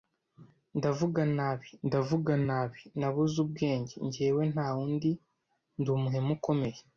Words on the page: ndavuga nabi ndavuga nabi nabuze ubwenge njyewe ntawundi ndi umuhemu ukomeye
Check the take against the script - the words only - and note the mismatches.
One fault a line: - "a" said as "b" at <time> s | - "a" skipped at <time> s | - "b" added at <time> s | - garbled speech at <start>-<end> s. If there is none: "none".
none